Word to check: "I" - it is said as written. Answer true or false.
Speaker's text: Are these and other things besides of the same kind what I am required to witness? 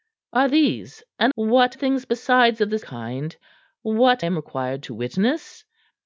false